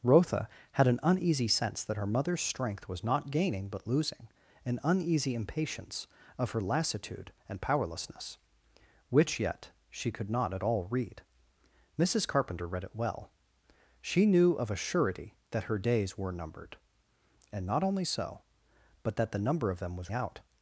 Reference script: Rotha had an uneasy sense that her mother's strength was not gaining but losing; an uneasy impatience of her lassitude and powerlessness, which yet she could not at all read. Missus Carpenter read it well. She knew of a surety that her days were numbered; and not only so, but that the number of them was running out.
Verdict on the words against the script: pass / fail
fail